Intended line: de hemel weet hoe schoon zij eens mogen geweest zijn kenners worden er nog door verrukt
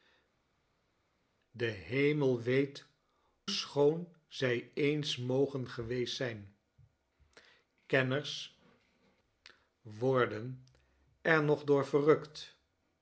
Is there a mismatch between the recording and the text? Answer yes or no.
yes